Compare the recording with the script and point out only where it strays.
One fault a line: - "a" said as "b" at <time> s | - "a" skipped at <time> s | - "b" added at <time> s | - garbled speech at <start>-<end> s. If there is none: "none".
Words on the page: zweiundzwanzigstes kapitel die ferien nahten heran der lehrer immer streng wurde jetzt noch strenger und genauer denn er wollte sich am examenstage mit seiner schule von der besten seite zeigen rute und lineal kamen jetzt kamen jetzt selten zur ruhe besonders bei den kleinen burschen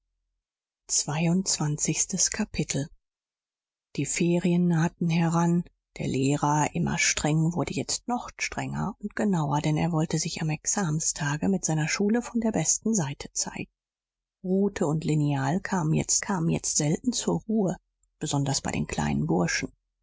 none